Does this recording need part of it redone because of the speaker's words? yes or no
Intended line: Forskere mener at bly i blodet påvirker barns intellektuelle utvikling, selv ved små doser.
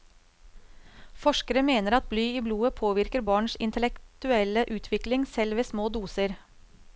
no